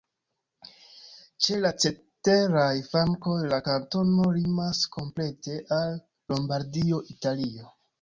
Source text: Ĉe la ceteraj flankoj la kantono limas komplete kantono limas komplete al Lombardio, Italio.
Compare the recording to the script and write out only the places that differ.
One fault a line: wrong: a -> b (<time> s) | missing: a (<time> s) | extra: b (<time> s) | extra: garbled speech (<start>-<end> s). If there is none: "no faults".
missing: kantono limas komplete (5.6 s)